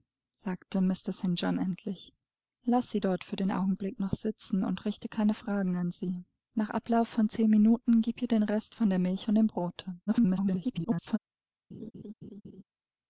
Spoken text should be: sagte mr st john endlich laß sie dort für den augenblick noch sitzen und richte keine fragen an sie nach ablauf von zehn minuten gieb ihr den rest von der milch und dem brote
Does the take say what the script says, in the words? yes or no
no